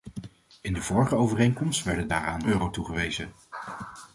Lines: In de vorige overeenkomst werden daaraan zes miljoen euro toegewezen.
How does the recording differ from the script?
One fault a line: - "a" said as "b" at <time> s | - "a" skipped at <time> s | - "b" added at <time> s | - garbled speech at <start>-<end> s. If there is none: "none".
- "zes miljoen" skipped at 2.5 s